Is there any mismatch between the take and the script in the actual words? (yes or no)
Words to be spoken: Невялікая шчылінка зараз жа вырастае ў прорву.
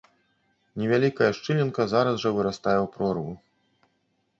no